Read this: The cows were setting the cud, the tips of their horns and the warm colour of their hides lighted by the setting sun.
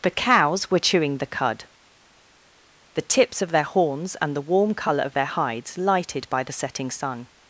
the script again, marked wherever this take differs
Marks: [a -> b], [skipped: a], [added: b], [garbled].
The cows were [setting -> chewing] the cud, the tips of their horns and the warm colour of their hides lighted by the setting sun.